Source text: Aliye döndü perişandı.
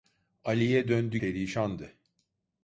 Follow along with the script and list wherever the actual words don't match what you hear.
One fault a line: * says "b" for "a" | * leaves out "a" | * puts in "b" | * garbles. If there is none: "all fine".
all fine